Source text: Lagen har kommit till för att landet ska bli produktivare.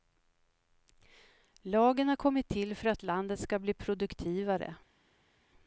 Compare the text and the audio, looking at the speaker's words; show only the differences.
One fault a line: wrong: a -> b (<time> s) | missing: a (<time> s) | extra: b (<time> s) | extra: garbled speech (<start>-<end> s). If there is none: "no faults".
no faults